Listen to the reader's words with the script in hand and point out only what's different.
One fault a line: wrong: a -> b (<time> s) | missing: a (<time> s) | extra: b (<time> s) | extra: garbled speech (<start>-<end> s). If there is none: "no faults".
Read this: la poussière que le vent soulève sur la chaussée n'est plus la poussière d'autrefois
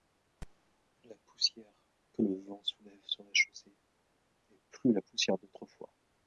no faults